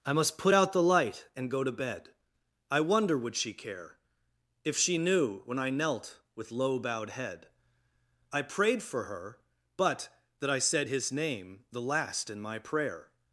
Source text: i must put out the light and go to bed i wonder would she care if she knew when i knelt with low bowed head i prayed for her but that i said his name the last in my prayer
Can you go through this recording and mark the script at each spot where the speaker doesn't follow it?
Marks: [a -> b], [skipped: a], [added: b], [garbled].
i must put out the light and go to bed i wonder would she care if she knew when i knelt with low bowed head i prayed for her but that i said his name the last in my prayer